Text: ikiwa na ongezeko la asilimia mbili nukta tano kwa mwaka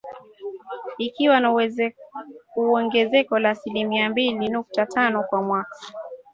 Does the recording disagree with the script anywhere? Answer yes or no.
no